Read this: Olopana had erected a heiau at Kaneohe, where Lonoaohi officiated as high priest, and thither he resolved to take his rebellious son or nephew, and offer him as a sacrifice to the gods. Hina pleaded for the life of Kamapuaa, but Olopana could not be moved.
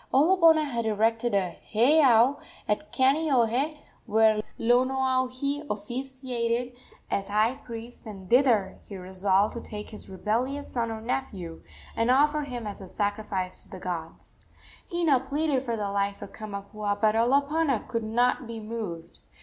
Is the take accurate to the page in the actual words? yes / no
yes